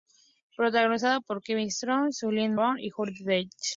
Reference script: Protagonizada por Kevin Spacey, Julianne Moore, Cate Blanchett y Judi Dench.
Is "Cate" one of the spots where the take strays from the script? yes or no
yes